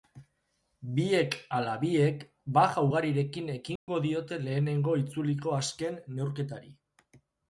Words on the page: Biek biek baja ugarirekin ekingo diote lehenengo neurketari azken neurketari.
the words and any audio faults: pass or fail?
fail